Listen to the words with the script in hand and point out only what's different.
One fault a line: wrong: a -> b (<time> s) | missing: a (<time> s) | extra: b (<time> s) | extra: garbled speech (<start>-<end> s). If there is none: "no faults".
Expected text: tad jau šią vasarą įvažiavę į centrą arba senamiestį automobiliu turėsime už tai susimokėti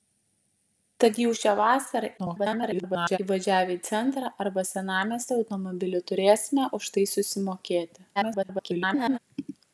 extra: garbled speech (2.2-3.2 s)
extra: garbled speech (8.2-9.2 s)